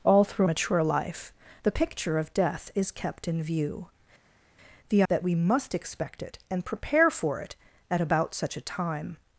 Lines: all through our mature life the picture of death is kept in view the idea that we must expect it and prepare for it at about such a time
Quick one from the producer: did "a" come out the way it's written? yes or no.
yes